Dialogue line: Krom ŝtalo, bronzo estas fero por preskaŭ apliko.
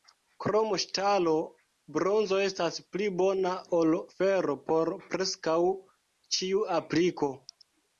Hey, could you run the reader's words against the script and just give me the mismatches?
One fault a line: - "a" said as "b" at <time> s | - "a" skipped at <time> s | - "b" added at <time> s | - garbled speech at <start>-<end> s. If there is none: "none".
- "pli bona ol" added at 3.0 s
- "ĉiu" added at 6.4 s